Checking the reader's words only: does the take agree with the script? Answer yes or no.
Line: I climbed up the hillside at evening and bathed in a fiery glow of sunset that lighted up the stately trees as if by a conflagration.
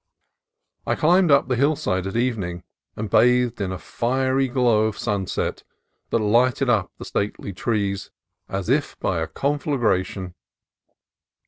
yes